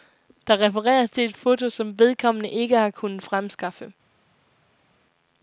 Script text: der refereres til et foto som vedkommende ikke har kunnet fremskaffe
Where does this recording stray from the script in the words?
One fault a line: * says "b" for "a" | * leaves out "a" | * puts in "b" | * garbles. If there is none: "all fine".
all fine